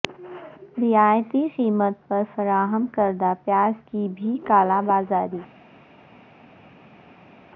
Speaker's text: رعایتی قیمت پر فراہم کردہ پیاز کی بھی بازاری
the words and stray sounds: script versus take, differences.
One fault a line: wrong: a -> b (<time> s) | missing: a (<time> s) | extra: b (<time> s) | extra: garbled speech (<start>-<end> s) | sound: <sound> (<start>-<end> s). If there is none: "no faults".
extra: کالا (4.5 s)